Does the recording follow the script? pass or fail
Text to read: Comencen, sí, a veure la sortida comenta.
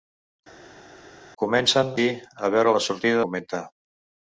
pass